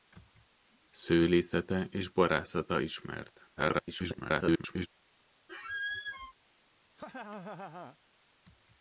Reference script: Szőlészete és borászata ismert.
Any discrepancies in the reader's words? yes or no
yes